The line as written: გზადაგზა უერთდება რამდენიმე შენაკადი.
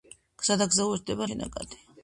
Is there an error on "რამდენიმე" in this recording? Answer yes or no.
yes